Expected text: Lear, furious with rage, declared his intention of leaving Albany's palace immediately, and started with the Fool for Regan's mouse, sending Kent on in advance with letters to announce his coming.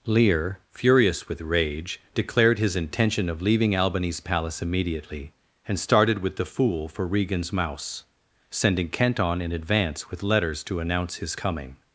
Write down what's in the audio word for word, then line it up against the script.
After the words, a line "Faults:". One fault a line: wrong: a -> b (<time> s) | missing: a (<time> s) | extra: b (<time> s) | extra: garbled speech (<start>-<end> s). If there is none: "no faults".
Lear, furious with rage, declared his intention of leaving Albany's palace immediately, and started with the Fool for Regan's mouse, sending Kent on in advance with letters to announce his coming.
Faults:
no faults